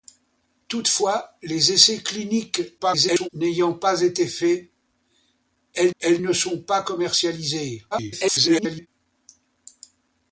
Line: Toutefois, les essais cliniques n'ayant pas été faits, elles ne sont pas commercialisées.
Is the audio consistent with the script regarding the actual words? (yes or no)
no